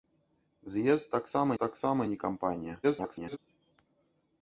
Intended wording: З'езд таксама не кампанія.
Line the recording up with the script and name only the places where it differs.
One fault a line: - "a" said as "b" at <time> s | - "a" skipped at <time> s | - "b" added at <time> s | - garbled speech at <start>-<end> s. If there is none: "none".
- "таксама" added at 1.6 s
- garbled speech at 2.8-3.4 s